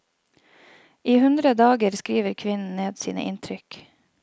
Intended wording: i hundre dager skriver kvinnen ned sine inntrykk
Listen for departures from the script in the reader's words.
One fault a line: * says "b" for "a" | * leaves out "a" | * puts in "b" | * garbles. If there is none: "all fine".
all fine